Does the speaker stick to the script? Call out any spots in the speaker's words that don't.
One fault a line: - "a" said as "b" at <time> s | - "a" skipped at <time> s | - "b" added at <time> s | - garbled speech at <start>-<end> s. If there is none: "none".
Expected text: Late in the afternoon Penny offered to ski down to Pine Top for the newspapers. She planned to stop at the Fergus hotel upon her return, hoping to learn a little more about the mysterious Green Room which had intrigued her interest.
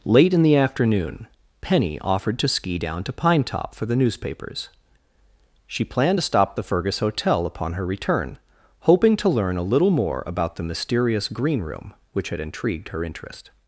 - "at" skipped at 6.5 s